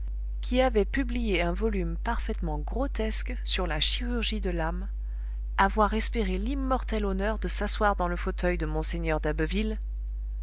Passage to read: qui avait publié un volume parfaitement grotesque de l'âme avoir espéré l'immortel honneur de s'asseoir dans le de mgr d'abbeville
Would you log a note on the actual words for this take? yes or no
yes